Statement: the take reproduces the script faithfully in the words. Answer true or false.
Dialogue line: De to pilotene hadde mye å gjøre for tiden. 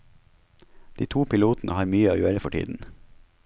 false